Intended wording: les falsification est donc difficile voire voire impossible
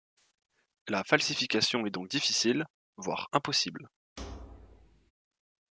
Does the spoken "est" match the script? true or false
true